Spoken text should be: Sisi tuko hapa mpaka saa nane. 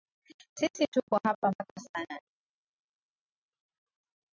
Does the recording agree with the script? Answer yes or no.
yes